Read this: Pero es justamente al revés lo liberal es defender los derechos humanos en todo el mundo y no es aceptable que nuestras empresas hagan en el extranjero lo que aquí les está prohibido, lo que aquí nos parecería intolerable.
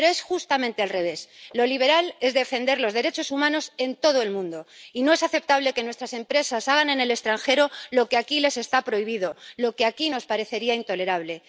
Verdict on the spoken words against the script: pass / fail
pass